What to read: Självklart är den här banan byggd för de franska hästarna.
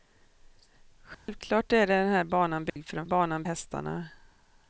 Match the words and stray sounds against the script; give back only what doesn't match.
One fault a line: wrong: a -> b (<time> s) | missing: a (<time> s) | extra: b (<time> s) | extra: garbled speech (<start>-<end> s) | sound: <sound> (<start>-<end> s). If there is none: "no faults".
sound: dropout (1.1-1.3 s)
sound: dropout (2.7-2.8 s)
wrong: franska -> banan (3.0 s)